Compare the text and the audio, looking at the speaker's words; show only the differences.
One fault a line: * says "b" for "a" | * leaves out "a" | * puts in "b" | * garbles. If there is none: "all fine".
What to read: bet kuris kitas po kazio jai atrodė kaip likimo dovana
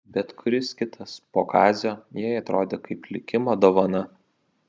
all fine